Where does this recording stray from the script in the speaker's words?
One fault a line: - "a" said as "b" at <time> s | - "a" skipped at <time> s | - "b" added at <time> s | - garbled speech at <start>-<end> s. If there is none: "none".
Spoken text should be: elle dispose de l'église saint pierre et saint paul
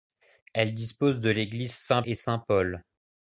- "pierre" skipped at 2.0 s